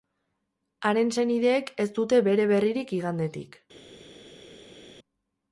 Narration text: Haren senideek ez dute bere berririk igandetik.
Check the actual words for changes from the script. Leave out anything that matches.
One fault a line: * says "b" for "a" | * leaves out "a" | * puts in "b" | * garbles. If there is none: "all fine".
all fine